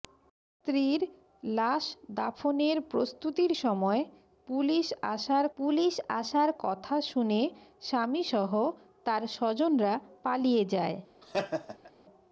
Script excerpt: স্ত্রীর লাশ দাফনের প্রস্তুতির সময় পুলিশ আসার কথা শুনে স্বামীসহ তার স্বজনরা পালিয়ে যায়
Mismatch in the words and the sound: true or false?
true